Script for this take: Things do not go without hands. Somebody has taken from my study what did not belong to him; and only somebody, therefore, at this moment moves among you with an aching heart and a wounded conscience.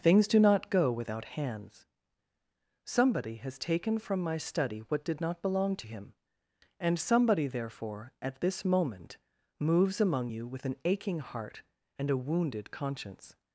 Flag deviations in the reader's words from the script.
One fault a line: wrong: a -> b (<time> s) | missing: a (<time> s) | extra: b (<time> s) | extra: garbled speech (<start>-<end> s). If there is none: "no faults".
missing: only (7.0 s)